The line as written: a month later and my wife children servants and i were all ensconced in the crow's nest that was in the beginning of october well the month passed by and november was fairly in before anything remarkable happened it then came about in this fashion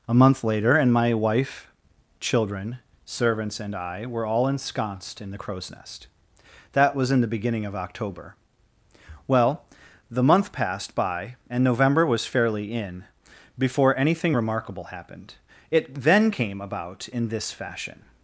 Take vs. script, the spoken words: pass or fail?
pass